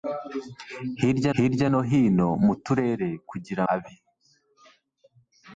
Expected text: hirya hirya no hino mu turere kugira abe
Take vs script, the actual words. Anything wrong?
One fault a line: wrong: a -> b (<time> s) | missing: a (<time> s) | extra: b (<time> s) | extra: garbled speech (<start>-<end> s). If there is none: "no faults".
no faults